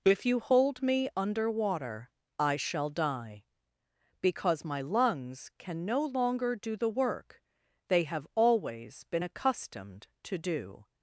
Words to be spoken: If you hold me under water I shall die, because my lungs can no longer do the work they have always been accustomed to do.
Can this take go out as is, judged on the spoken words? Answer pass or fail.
pass